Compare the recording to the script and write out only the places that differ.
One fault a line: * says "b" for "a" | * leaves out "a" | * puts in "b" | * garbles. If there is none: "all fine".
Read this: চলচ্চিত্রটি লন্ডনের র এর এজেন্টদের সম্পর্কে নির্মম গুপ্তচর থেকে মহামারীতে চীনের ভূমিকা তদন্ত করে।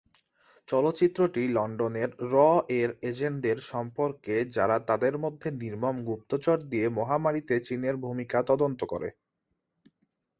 * puts in "যারা তাদের মধ্যে"
* says "দিয়ে" for "থেকে"